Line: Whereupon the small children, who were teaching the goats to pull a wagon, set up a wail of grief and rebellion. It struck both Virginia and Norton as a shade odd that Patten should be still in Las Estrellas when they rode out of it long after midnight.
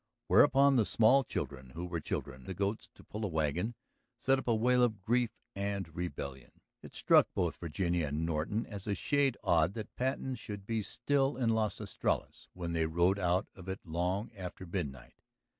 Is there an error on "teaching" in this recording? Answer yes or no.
yes